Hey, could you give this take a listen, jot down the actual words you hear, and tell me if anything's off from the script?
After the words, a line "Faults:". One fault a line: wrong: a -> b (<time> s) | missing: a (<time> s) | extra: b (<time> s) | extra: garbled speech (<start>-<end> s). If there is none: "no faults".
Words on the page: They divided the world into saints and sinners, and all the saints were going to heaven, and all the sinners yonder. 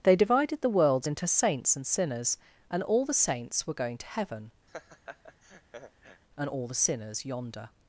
They divided the worlds into saints and sinners, and all the saints were going to heaven, and all the sinners yonder.
Faults:
wrong: world -> worlds (0.7 s)